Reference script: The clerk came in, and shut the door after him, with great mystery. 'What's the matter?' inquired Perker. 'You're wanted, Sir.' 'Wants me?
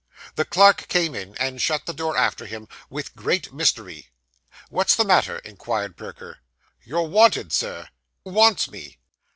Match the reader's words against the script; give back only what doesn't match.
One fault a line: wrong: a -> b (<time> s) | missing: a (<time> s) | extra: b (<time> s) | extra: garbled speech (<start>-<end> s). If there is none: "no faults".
no faults